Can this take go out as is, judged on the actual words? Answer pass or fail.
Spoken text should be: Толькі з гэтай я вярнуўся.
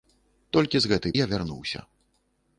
pass